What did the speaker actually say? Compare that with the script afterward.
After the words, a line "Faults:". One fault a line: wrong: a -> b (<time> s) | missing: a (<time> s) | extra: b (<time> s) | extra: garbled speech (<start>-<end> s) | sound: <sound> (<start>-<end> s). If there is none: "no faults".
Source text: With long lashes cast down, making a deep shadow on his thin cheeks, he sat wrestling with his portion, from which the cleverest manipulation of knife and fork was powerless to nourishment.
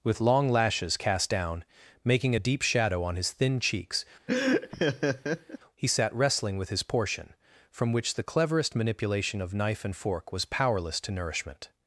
With long lashes cast down, making a deep shadow on his thin cheeks, he sat wrestling with his portion, from which the cleverest manipulation of knife and fork was powerless to nourishment.
Faults:
sound: laugh (4.3-5.6 s)